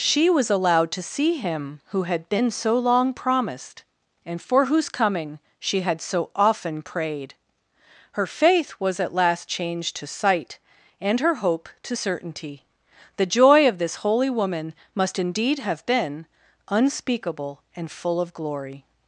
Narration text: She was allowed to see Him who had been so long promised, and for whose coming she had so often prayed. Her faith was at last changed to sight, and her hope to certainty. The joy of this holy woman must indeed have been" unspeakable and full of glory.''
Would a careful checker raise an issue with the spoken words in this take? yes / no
no